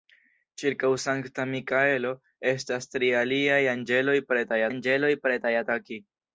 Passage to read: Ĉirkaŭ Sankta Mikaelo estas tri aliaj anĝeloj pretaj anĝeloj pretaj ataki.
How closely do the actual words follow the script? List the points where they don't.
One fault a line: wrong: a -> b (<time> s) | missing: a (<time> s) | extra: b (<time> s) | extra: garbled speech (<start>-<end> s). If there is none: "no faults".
no faults